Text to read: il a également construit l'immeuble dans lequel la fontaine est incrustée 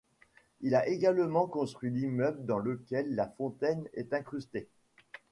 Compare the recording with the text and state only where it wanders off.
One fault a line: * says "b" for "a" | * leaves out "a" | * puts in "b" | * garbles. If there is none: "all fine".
all fine